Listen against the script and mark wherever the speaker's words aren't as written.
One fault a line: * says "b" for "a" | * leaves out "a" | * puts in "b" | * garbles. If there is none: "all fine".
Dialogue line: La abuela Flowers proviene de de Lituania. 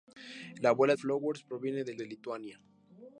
all fine